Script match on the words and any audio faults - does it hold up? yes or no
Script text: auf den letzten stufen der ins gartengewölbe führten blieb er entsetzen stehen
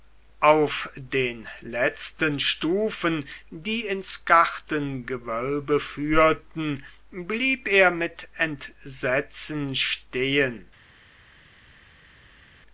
no